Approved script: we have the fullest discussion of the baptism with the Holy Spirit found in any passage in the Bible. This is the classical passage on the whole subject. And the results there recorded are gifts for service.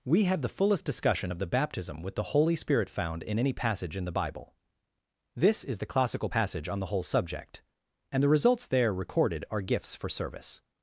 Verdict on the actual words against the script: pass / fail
pass